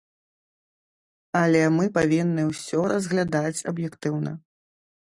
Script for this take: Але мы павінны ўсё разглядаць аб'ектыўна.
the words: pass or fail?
pass